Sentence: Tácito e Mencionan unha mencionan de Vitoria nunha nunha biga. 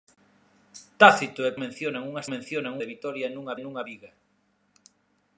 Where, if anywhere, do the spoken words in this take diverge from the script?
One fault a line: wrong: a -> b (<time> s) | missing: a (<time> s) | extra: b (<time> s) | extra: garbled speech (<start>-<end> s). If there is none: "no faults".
no faults